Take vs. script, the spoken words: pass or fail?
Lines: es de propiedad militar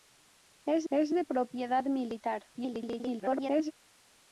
fail